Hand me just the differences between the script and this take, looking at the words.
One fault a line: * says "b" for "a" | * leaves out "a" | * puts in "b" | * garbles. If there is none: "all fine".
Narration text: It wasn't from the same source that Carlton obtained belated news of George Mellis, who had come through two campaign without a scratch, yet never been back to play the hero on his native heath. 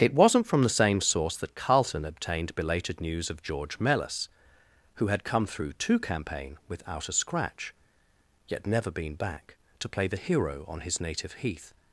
all fine